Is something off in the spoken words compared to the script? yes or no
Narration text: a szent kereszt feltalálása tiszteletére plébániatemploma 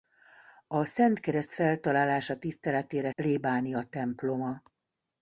no